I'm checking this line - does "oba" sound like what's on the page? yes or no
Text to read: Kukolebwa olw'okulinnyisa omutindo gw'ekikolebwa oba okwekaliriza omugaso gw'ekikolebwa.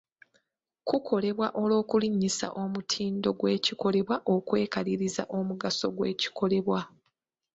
no